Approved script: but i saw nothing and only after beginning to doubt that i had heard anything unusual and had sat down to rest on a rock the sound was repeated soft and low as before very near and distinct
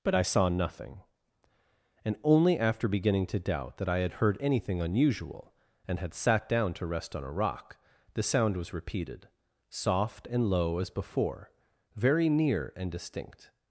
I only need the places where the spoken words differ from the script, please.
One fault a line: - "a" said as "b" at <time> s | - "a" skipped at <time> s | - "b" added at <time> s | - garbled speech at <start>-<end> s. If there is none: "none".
none